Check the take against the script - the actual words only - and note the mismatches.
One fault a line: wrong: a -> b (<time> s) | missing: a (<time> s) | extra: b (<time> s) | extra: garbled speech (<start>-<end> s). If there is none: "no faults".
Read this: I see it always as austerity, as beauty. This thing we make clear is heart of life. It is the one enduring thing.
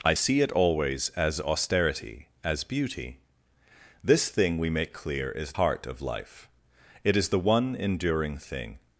no faults